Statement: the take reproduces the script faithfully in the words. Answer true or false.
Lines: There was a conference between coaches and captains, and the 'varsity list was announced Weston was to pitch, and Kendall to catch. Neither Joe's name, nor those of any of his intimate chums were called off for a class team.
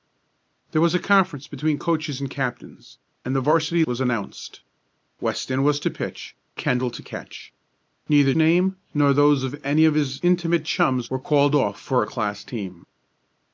false